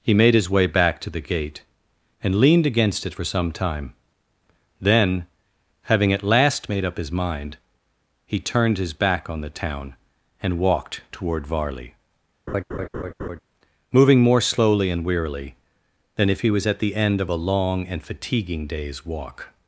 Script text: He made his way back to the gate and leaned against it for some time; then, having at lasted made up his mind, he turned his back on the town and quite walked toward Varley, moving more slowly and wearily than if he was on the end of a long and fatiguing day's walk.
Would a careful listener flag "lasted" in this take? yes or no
yes